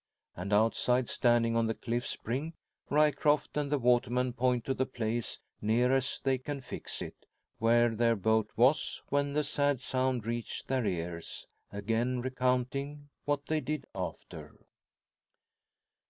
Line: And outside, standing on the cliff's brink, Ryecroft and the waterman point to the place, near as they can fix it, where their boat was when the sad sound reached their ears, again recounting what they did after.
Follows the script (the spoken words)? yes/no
yes